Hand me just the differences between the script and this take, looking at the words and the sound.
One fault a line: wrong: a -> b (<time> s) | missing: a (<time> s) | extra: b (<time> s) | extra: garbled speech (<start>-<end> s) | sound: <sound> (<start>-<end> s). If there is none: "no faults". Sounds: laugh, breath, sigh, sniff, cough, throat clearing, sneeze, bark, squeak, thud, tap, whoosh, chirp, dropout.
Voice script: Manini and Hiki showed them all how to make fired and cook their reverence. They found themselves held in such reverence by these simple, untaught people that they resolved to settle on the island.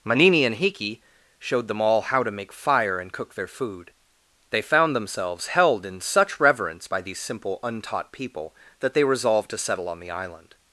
wrong: fired -> fire (2.5 s)
wrong: reverence -> food (3.5 s)